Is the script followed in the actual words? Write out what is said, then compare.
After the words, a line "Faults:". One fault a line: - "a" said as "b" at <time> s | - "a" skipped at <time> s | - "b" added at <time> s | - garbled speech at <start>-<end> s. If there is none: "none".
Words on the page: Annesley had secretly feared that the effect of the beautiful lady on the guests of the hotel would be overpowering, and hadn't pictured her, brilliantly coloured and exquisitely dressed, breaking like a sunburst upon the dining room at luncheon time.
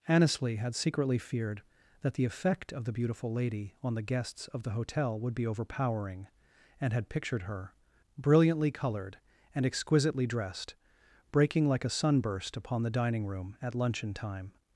Annesley had secretly feared that the effect of the beautiful lady on the guests of the hotel would be overpowering, and had pictured her, brilliantly coloured and exquisitely dressed, breaking like a sunburst upon the dining room at luncheon time.
Faults:
- "hadn't" said as "had" at 6.9 s